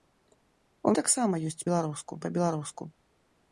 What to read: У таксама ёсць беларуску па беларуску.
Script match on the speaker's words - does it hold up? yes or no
yes